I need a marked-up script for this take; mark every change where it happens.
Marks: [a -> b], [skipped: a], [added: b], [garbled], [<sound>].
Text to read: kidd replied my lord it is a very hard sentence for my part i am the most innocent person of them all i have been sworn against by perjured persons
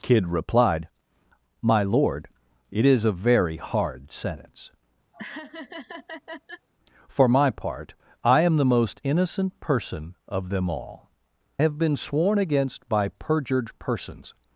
kidd replied my lord it is a very hard sentence [laugh] for my part i am the most innocent person of them all [skipped: i] have been sworn against by perjured persons